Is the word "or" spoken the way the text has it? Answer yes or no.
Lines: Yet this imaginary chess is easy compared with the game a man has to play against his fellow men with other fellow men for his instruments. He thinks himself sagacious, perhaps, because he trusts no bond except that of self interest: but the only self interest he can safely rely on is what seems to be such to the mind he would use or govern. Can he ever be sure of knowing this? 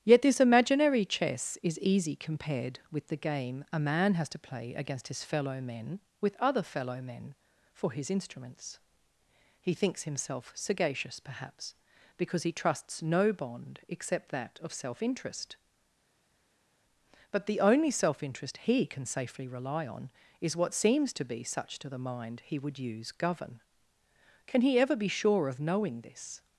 no